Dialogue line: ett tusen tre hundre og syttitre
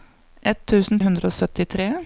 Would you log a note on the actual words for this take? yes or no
yes